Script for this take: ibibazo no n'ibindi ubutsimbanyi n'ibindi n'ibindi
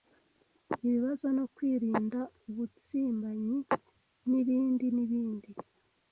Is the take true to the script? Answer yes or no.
no